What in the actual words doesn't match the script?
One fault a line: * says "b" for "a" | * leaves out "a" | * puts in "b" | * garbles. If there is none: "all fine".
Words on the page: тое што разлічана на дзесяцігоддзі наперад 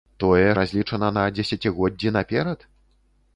* leaves out "што"